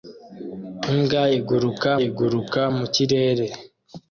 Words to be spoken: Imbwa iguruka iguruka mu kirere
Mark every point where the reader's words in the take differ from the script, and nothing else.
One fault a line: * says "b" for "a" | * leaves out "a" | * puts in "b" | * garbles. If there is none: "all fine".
all fine